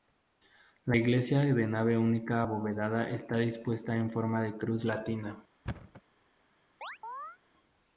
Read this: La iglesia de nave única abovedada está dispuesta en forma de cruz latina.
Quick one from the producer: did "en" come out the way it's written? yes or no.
yes